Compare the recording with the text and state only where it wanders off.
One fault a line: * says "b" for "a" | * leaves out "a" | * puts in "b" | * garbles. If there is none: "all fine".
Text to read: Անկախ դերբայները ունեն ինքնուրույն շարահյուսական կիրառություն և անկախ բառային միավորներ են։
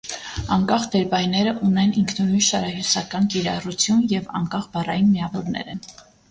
all fine